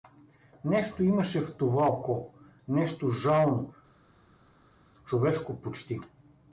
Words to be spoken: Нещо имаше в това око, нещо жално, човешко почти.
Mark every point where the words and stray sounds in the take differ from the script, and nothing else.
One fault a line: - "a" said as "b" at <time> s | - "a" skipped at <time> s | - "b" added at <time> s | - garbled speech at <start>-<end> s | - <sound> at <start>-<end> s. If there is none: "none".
none